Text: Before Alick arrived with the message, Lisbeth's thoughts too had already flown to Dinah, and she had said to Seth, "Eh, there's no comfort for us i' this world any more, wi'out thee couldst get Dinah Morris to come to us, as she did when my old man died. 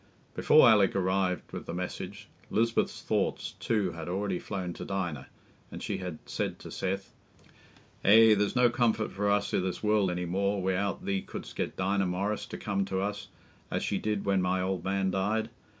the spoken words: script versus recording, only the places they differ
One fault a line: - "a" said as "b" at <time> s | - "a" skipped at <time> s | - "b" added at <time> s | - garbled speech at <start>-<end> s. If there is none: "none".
none